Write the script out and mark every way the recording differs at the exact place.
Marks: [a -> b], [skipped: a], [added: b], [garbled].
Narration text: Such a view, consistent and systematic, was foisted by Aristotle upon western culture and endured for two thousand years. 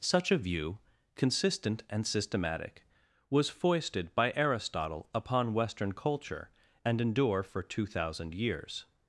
Such a view, consistent and systematic, was foisted by Aristotle upon western culture and [endured -> endure] for two thousand years.